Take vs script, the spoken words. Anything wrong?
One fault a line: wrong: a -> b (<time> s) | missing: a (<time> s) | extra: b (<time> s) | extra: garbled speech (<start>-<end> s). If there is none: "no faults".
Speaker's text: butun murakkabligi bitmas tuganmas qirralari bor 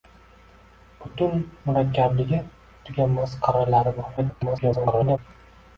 missing: bitmas (2.4 s)
extra: garbled speech (4.2-5.2 s)